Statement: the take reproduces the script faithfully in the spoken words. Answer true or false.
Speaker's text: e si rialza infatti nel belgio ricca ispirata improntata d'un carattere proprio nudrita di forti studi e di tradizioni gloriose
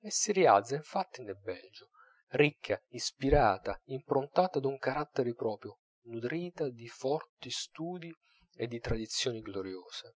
true